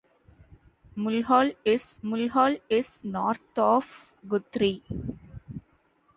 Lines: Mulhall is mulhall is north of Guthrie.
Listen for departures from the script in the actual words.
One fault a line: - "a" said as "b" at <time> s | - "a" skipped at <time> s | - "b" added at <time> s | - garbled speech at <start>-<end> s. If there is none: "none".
none